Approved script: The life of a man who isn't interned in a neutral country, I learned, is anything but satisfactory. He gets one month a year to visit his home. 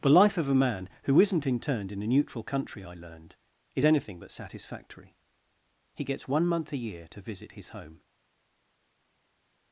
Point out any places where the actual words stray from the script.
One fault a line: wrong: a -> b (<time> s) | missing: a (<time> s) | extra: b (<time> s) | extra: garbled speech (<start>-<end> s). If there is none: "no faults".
no faults